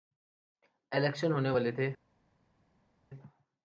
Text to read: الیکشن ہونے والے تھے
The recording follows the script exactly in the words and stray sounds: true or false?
true